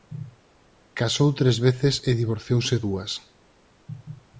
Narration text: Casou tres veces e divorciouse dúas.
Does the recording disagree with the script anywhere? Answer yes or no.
no